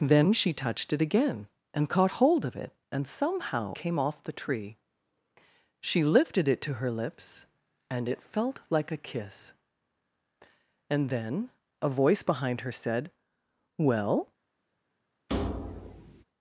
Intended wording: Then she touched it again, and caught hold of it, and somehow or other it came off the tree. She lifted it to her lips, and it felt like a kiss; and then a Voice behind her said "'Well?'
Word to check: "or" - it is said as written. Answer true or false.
false